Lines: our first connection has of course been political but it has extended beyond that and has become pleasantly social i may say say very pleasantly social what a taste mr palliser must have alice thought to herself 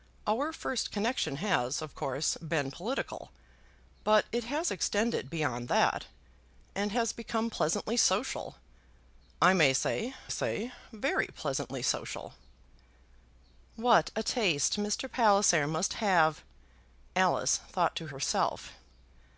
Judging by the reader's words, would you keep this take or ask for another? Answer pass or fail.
pass